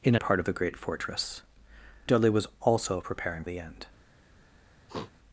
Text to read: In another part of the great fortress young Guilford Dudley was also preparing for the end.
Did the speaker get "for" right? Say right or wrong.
wrong